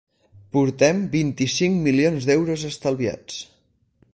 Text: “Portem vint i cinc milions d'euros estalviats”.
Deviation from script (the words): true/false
false